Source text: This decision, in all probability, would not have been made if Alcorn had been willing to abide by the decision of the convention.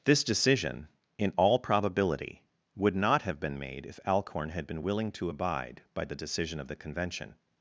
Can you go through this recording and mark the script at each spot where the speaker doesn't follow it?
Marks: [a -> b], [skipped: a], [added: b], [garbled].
This decision, in all probability, would not have been made if Alcorn had been willing to abide by the decision of the convention.